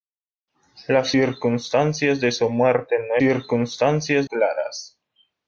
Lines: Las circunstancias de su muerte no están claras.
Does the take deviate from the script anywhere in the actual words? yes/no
yes